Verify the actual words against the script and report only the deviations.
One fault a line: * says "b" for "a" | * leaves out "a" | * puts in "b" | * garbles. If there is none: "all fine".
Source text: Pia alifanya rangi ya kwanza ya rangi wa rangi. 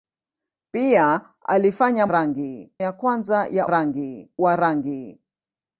all fine